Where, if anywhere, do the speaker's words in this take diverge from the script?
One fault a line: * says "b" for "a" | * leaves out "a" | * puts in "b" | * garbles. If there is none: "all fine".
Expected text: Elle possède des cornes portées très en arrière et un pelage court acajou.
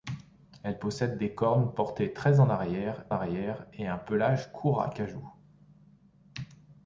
* puts in "arrière"